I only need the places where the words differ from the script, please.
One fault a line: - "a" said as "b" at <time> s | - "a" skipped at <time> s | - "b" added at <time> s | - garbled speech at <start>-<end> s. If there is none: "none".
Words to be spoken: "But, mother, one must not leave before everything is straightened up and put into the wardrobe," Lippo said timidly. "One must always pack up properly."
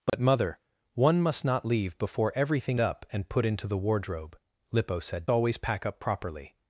- "is straightened" skipped at 2.8 s
- "timidly One must" skipped at 5.3 s